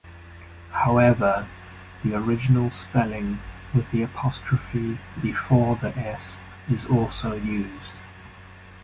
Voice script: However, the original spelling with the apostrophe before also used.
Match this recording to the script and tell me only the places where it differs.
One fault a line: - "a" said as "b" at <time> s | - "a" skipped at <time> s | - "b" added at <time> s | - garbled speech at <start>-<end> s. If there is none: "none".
- "the s is" added at 5.8 s